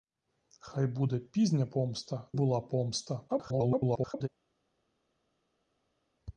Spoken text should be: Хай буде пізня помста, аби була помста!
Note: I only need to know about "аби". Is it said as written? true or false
false